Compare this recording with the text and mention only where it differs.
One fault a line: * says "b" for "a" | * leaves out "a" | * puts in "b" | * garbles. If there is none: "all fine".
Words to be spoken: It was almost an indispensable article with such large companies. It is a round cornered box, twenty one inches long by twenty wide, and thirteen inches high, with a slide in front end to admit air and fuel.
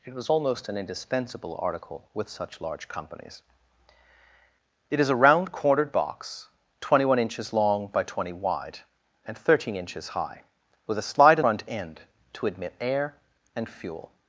all fine